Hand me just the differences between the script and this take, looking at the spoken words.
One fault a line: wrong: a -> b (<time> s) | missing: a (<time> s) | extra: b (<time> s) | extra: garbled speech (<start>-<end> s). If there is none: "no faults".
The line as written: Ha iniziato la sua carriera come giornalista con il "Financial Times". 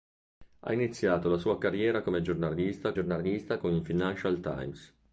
extra: giornalista (2.9 s)